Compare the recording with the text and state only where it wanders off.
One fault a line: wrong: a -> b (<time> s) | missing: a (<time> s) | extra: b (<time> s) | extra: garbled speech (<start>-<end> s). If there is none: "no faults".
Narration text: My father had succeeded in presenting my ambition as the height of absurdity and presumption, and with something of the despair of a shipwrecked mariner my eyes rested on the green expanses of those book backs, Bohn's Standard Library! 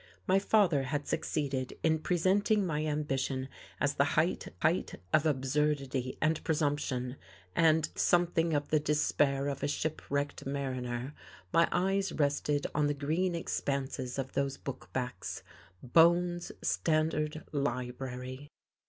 extra: height (4.6 s)
missing: with (7.9 s)